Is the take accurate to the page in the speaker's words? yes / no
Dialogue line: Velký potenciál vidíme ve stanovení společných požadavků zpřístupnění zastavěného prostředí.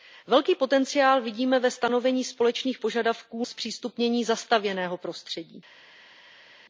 yes